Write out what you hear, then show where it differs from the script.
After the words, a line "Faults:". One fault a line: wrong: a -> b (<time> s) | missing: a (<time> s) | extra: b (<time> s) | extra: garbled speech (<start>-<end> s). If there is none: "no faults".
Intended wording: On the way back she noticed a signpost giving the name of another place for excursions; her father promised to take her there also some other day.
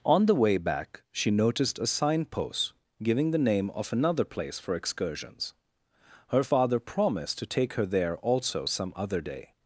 On the way back she noticed a signpost giving the name of another place for excursions; her father promised to take her there also some other day.
Faults:
no faults